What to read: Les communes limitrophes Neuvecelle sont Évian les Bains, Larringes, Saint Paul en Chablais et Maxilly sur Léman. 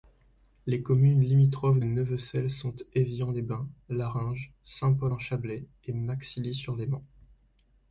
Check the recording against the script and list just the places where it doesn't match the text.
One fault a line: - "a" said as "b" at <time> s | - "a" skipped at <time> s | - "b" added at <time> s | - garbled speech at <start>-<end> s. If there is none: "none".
none